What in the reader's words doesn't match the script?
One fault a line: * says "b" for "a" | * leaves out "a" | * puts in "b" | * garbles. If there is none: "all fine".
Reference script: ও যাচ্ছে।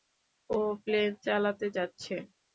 * puts in "প্লেন চালাতে"